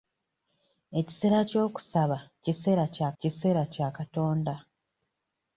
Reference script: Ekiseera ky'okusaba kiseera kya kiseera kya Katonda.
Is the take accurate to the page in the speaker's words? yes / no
yes